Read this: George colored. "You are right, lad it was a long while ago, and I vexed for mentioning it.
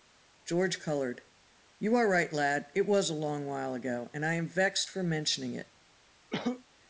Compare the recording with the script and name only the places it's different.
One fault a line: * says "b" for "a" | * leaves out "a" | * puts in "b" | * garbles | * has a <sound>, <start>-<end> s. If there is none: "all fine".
* puts in "am"
* has a cough, 6.3-6.6 s